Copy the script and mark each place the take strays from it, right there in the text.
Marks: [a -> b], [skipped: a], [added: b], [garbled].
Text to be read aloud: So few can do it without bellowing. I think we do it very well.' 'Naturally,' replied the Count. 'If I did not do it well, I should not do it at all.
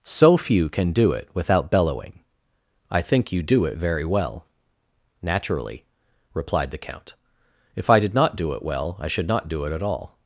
So few can do it without bellowing. I think [we -> you] do it very well.' 'Naturally,' replied the Count. 'If I did not do it well, I should not do it at all.